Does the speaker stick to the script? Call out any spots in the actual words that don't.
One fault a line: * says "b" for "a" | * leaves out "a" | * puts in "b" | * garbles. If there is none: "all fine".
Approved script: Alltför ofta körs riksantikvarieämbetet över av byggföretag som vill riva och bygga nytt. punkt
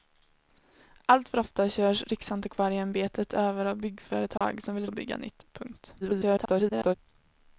* leaves out "riva"
* garbles